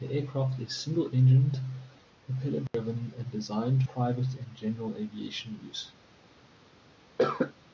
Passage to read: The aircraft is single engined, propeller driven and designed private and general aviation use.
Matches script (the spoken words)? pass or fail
pass